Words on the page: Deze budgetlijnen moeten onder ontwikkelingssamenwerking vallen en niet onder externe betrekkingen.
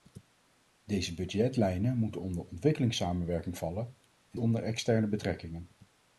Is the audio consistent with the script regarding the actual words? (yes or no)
no